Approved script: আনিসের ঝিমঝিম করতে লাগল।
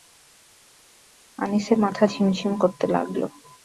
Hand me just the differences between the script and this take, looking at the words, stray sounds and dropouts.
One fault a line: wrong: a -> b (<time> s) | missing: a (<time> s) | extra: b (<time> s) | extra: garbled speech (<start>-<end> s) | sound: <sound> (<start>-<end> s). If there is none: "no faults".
extra: মাথা (1.8 s)